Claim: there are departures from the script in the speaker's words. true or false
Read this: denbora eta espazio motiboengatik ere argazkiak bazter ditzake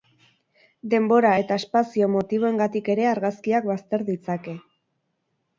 false